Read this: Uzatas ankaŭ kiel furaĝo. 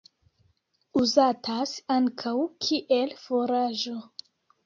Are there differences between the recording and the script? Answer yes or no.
no